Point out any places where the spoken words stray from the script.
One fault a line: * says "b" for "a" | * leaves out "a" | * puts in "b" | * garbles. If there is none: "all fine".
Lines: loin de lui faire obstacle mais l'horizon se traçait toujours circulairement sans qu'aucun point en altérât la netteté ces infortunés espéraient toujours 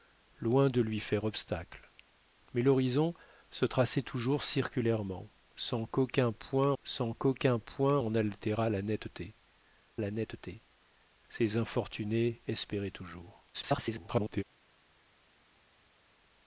* puts in "sans qu'aucun point"
* puts in "la netteté"
* garbles